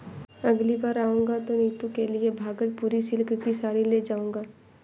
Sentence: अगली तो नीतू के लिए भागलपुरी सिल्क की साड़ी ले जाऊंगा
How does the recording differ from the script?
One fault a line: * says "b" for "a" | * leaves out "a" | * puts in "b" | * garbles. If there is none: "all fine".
* puts in "बार आऊंगा"